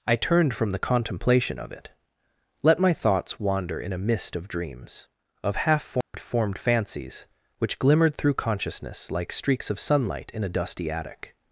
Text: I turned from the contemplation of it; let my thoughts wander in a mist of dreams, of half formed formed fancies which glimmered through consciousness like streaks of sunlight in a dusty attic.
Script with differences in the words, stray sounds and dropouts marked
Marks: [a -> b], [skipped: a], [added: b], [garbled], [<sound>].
I turned from the contemplation of it; let my thoughts wander in a mist of dreams, of half formed [dropout] formed fancies which glimmered through consciousness like streaks of sunlight in a dusty attic.